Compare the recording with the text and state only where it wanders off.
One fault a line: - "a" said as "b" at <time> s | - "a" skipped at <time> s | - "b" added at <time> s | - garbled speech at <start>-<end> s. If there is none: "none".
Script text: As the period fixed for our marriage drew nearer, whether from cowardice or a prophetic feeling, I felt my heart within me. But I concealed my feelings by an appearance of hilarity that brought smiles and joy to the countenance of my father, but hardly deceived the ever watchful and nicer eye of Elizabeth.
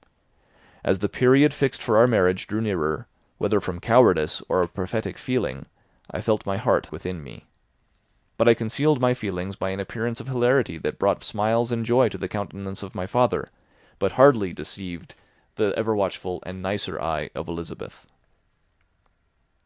none